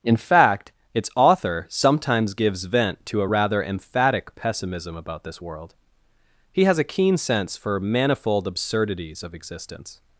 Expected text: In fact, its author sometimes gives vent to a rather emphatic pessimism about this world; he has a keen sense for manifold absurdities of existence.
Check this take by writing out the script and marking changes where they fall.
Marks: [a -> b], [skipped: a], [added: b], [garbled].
In fact, its author sometimes gives vent to a rather emphatic pessimism about this world; he has a keen sense for manifold absurdities of existence.